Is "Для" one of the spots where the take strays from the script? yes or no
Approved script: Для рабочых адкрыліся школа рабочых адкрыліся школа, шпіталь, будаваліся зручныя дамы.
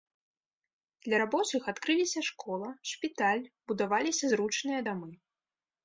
no